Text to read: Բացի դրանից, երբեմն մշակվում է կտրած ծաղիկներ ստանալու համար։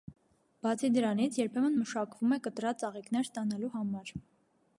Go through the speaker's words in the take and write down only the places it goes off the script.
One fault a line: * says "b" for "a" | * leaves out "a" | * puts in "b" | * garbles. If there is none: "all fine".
all fine